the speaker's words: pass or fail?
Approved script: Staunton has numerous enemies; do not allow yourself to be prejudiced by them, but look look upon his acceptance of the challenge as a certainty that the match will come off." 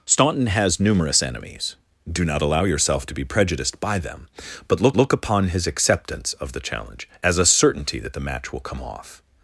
pass